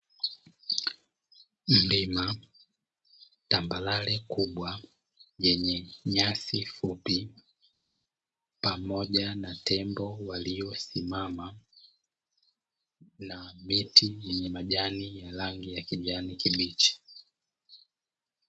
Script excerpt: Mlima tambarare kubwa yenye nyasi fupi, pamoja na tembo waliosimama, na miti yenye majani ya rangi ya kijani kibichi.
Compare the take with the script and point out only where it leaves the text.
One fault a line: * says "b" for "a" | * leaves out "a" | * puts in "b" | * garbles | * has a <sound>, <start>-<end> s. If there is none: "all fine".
all fine